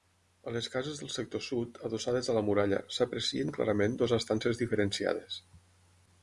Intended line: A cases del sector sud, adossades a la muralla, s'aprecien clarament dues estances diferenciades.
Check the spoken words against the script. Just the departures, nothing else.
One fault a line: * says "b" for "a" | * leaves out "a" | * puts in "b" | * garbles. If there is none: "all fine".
* puts in "les"